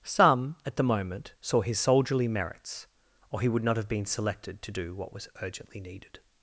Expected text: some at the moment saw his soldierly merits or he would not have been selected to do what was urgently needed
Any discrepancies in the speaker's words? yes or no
no